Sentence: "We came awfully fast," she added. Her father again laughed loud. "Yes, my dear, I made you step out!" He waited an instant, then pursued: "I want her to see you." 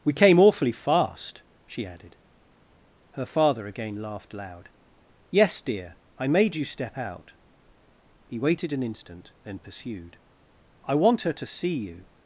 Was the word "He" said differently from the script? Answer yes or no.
no